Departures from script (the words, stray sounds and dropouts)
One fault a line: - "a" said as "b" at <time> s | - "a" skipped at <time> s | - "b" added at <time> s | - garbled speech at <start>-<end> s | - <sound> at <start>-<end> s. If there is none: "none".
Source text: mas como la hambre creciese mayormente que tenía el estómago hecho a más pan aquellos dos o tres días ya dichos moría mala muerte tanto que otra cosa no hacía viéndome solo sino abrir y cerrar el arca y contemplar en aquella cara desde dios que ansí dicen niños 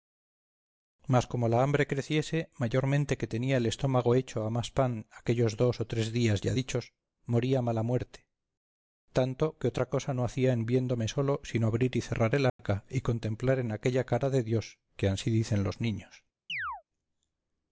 - "en" added at 10.5 s
- dropout at 12.5-12.6 s
- "desde" said as "de" at 14.3 s
- "los" added at 15.6 s
- chirp at 16.5-16.8 s